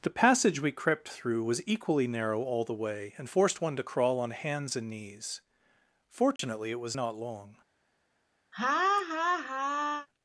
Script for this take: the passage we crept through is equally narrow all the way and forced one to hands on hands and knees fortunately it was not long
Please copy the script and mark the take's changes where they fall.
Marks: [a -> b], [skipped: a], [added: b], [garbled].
the passage we crept through [is -> was] equally narrow all the way and forced one to [hands -> crawl] on hands and knees fortunately it was not long